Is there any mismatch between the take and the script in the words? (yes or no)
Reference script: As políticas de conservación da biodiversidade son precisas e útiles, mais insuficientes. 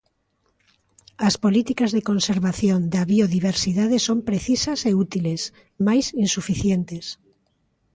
no